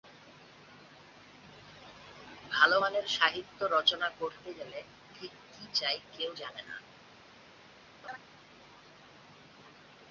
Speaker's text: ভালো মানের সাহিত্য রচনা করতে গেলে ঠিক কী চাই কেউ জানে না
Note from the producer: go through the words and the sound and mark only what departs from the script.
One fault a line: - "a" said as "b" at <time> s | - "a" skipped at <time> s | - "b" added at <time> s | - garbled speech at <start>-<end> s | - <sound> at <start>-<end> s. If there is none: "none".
- laugh at 8.0-8.2 s